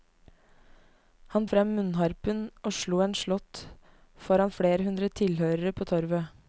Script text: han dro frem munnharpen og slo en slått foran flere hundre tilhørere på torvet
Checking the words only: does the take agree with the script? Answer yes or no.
no